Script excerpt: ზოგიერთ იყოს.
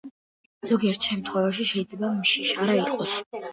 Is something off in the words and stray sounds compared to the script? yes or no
yes